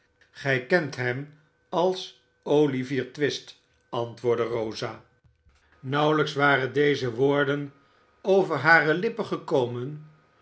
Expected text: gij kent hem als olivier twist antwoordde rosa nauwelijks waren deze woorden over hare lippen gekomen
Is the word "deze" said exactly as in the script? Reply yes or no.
yes